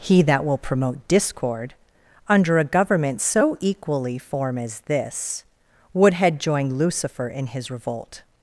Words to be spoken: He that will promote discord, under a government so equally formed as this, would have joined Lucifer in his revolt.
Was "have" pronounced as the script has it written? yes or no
no